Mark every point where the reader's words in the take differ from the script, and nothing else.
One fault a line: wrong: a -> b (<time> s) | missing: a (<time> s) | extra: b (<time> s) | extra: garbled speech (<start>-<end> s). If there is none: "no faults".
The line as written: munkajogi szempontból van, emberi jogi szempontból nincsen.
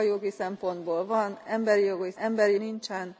wrong: szempontból -> emberi (2.2 s)